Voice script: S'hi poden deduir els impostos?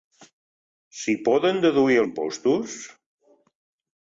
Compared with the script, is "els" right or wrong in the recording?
wrong